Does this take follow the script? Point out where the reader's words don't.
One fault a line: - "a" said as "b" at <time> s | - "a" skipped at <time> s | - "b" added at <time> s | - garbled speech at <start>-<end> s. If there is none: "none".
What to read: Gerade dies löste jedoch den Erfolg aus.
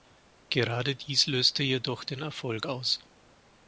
none